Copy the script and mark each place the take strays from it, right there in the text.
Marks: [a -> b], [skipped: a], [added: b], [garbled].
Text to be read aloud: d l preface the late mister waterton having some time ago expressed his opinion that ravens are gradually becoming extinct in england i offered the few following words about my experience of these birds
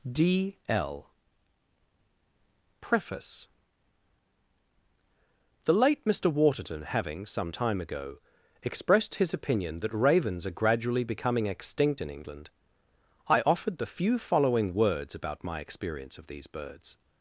d l preface the late mister waterton having some time ago expressed his opinion that ravens are gradually becoming extinct in england i offered the few following words about my experience of these birds